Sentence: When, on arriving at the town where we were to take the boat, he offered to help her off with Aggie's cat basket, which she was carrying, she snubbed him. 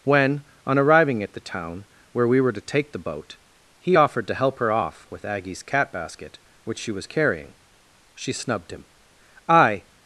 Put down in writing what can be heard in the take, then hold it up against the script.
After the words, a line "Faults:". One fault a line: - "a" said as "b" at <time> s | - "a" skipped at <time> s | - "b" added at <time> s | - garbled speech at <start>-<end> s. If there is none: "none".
When, on arriving at the town where we were to take the boat, he offered to help her off with Aggie's cat basket, which she was carrying, she snubbed him. "I
Faults:
- "I" added at 9.5 s